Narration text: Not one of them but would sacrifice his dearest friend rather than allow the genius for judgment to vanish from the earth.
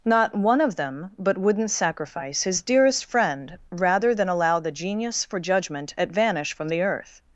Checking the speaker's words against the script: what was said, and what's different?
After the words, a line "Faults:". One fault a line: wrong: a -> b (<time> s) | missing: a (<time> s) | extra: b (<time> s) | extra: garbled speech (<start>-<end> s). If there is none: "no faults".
Not one of them but wouldn't sacrifice his dearest friend rather than allow the genius for judgment at vanish from the earth.
Faults:
wrong: would -> wouldn't (1.4 s)
wrong: to -> at (6.0 s)